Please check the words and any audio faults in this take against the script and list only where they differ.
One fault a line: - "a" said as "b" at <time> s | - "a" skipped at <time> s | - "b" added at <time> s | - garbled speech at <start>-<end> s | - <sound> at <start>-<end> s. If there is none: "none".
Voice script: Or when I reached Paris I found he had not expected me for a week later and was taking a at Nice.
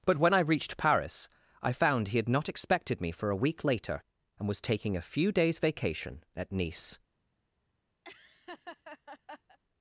- "Or" said as "But" at 0.1 s
- "few days vacation" added at 5.0 s
- laugh at 8.0-9.6 s